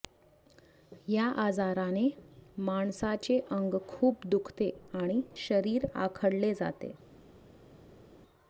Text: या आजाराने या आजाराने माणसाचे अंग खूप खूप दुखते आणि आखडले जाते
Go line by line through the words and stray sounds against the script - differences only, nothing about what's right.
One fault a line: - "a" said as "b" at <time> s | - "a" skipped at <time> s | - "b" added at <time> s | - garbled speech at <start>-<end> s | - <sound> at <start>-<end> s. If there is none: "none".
- "या आजाराने" skipped at 2.1 s
- "खूप" skipped at 4.3 s
- "शरीर" added at 5.4 s